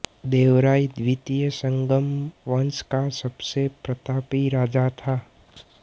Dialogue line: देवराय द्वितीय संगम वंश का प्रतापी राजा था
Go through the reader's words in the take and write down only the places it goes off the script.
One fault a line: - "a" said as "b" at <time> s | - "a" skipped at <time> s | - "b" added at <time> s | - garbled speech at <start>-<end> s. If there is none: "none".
- "सबसे" added at 3.2 s